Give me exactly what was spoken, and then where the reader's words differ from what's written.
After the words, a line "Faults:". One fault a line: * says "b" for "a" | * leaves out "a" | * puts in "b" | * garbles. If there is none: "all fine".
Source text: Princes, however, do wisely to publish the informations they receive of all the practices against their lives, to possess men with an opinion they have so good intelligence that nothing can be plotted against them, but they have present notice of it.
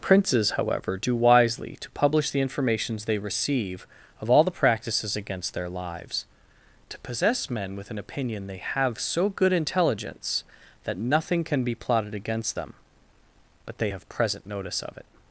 Princes, however, do wisely to publish the informations they receive of all the practices against their lives, to possess men with an opinion they have so good intelligence that nothing can be plotted against them, but they have present notice of it.
Faults:
all fine